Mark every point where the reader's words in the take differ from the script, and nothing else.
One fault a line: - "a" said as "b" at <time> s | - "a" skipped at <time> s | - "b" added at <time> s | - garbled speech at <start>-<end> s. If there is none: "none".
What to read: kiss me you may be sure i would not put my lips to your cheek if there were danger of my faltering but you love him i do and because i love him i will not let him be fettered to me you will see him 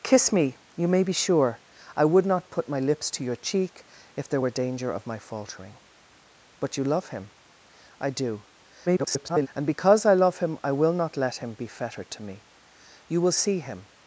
- garbled speech at 8.9-9.5 s